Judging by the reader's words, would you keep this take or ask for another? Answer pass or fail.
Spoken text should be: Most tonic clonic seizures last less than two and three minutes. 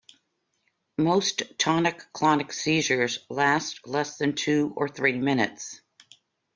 fail